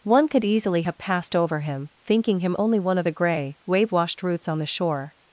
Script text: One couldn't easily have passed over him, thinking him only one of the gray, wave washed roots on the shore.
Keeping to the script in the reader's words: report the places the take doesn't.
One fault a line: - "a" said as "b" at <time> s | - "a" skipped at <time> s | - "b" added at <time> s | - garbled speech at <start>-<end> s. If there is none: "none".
- "couldn't" said as "could" at 0.3 s